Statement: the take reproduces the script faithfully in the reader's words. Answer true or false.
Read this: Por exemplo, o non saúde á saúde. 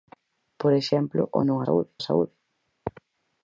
true